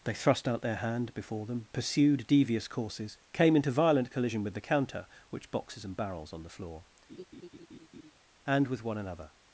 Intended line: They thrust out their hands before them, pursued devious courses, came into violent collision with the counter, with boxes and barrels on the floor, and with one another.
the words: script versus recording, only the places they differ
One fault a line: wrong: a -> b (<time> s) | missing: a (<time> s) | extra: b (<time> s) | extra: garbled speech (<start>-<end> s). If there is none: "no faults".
wrong: hands -> hand (0.8 s)
wrong: with -> which (5.3 s)